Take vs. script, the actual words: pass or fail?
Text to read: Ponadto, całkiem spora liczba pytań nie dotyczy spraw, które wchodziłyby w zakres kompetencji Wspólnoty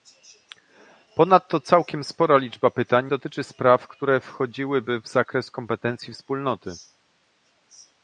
fail